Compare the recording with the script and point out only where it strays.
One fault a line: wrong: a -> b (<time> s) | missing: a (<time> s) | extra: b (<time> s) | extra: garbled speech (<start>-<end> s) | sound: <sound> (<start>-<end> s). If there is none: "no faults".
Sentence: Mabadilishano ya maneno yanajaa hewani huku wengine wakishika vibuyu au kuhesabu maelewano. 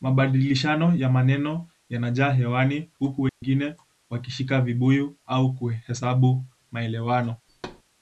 sound: dropout (3.3-3.4 s)
sound: thud (7.5-7.8 s)